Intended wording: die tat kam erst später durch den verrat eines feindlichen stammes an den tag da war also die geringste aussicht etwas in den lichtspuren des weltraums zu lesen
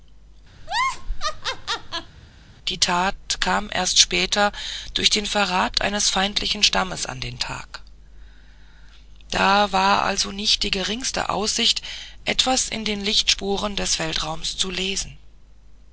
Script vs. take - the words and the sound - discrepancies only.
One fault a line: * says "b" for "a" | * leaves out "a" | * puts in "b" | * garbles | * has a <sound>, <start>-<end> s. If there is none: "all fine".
* has a laugh, 0.6-2.1 s
* puts in "nicht"